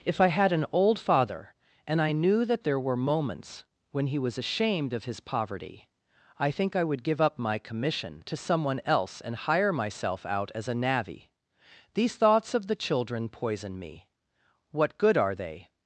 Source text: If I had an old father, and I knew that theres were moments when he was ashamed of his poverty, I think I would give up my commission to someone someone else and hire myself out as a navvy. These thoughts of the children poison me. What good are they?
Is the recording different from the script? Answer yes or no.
yes